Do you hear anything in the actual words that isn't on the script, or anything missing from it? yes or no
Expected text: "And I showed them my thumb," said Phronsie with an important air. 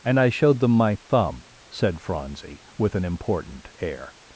no